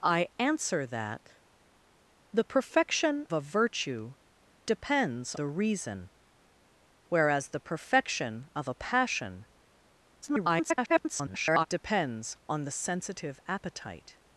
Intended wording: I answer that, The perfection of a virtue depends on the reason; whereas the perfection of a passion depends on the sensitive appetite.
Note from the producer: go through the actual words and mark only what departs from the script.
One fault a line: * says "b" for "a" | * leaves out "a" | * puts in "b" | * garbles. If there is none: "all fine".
* leaves out "of"
* leaves out "on"
* garbles